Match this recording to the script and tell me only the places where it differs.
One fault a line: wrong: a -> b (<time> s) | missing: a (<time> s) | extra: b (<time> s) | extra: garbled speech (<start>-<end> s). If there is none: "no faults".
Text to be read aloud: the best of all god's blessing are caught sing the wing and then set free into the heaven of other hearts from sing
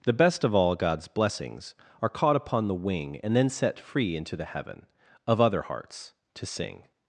wrong: blessing -> blessings (1.1 s)
wrong: sing -> upon (2.4 s)
wrong: from -> to (6.3 s)